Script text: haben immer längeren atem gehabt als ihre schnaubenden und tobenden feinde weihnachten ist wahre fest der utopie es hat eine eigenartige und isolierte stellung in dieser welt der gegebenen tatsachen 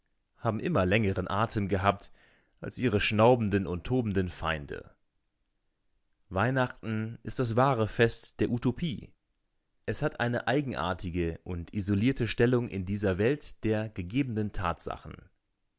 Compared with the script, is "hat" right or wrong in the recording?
right